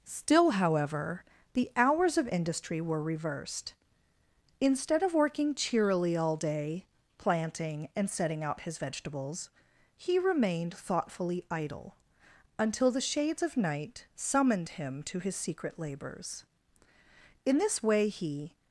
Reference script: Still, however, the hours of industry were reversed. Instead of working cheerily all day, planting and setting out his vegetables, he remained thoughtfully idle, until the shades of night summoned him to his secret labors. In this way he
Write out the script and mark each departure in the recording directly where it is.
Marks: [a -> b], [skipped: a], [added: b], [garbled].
Still, however, the hours of industry were reversed. Instead of working cheerily all day, planting and setting out his vegetables, he remained thoughtfully idle, until the shades of night summoned him to his secret labors. In this way he